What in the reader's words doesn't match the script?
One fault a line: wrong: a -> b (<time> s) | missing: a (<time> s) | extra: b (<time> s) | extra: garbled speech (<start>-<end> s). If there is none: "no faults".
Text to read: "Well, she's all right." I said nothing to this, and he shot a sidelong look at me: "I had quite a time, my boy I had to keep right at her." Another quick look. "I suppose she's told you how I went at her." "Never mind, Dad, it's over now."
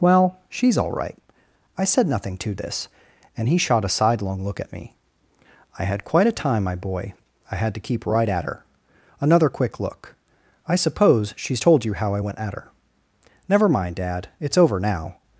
no faults